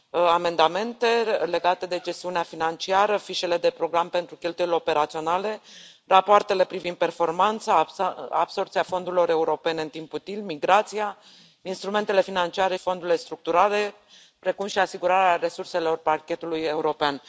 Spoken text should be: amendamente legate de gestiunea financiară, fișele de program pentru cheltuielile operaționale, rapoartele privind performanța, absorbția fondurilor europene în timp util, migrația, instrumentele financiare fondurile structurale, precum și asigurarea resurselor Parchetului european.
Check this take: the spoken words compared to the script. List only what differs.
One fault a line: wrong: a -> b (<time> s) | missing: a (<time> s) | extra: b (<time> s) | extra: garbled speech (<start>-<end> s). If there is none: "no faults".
no faults